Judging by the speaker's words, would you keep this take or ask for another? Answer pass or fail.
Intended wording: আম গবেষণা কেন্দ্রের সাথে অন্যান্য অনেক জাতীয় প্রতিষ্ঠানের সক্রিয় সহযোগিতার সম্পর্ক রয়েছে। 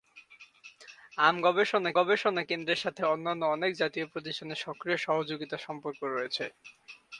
fail